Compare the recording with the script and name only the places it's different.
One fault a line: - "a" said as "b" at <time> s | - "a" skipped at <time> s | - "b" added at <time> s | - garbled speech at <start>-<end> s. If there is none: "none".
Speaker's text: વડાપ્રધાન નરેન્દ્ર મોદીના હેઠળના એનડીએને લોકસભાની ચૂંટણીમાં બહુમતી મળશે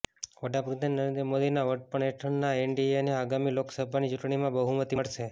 - "વડપણ" added at 1.7 s
- "આગામી" added at 3.2 s